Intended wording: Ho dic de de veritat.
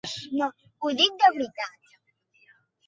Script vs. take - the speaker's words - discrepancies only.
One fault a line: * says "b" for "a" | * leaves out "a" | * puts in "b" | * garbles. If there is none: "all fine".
* leaves out "de"